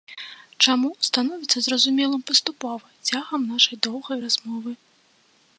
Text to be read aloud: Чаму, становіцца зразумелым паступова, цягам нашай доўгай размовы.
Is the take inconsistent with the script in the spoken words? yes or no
no